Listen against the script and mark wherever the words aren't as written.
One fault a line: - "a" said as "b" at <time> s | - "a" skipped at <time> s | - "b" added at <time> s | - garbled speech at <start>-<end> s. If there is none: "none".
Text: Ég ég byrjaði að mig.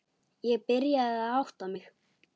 - "ég" skipped at 0.6 s
- "átta" added at 1.4 s